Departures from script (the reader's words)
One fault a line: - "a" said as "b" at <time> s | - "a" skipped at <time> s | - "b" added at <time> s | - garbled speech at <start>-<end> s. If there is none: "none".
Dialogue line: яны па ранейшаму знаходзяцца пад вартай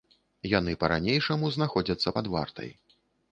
none